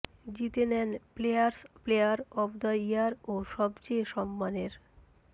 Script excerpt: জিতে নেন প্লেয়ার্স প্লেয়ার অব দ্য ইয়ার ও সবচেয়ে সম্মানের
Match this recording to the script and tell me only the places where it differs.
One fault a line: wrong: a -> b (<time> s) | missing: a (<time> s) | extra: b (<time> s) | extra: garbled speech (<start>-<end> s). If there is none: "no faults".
no faults